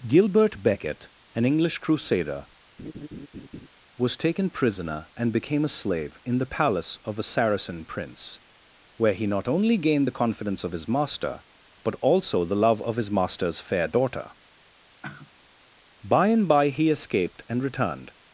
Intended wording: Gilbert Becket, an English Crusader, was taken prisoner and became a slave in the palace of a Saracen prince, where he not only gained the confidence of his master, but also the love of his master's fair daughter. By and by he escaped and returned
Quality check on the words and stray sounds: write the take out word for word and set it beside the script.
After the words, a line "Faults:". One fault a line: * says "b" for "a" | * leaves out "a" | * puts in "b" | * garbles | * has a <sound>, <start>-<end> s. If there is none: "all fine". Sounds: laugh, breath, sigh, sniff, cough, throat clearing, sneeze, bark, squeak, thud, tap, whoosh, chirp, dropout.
Gilbert Becket, an English Crusader, was taken prisoner and became a slave in the palace of a Saracen prince, where he not only gained the confidence of his master, but also the love of his master's fair daughter. By and by he escaped and returned
Faults:
* has a laugh, 2.8-3.7 s
* has a sigh, 15.0-15.3 s